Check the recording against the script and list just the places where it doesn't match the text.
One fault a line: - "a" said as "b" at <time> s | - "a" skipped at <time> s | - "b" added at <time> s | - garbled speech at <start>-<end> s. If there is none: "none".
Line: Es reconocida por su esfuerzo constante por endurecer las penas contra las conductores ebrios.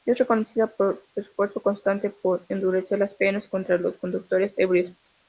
- "las" said as "los" at 3.8 s